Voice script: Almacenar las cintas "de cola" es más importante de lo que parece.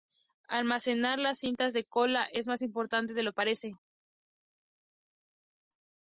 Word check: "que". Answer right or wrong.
wrong